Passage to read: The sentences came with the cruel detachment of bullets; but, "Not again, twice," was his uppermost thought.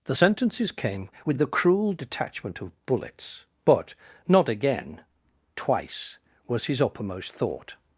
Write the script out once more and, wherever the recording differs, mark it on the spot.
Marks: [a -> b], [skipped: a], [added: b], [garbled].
The sentences came with the cruel detachment of bullets; but, "Not again, twice," was his uppermost thought.